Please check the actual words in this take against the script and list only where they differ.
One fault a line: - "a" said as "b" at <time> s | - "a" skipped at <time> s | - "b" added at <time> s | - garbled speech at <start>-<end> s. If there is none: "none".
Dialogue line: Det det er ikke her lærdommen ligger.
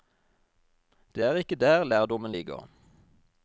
- "det" skipped at 1.2 s
- "her" said as "der" at 1.6 s